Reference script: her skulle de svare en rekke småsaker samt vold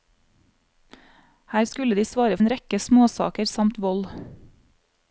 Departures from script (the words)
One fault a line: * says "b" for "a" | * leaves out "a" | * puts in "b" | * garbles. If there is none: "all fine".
all fine